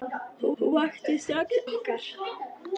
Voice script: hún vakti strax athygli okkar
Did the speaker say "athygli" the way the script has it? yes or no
no